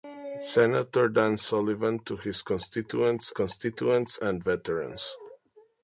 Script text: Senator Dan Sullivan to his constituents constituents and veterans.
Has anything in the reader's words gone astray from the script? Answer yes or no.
no